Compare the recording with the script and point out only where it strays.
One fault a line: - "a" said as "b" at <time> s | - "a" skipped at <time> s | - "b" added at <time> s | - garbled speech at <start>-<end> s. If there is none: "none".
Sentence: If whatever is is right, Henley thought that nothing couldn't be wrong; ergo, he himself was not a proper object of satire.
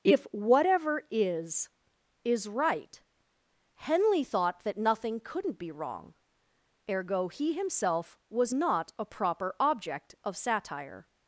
none